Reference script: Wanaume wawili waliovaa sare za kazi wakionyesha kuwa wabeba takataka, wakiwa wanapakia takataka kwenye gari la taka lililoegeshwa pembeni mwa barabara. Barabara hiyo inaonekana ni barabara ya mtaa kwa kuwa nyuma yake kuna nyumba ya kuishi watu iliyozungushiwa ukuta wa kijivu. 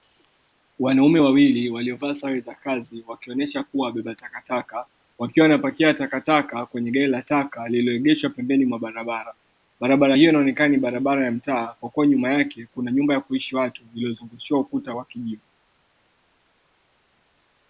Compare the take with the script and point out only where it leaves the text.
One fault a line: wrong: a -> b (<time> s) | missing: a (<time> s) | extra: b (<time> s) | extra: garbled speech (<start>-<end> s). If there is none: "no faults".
no faults